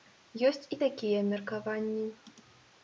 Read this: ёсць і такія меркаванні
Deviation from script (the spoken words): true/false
false